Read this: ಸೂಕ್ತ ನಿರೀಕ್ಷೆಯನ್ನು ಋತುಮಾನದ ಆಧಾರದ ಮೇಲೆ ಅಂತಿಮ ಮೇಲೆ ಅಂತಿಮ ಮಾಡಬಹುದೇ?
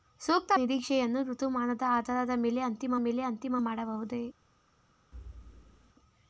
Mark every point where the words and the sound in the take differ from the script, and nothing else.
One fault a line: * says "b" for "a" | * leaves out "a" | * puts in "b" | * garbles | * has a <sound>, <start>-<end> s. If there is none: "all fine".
* has a thud, 5.1-5.9 s